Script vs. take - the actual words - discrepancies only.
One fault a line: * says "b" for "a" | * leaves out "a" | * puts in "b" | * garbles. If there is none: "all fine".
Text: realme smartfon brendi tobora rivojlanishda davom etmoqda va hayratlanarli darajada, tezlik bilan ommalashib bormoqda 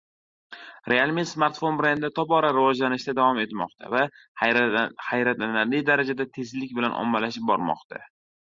all fine